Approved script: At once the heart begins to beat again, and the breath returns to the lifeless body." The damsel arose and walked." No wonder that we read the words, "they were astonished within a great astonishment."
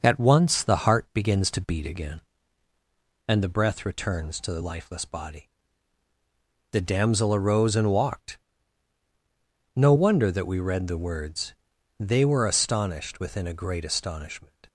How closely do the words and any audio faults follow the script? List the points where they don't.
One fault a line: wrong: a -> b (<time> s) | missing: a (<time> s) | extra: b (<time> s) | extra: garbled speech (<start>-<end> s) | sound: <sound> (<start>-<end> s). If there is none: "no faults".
no faults